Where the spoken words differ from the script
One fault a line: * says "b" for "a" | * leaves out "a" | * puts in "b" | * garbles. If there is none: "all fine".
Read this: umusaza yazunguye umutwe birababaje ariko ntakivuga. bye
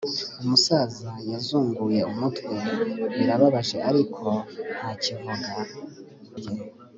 all fine